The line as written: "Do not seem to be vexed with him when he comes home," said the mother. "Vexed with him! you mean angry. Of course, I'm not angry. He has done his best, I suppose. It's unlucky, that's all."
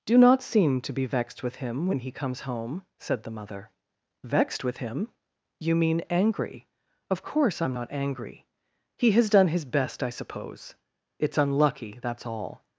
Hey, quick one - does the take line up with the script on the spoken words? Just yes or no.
yes